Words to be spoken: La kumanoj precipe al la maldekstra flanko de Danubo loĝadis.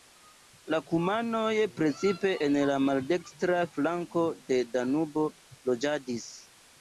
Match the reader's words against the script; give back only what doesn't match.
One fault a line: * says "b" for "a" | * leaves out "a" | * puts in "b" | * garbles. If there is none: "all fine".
* says "en" for "al"